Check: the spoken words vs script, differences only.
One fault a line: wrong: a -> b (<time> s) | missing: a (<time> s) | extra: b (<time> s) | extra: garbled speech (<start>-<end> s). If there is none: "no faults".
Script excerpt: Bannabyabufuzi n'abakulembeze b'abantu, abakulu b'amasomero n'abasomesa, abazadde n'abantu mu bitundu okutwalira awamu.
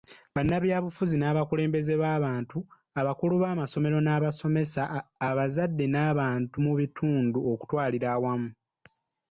no faults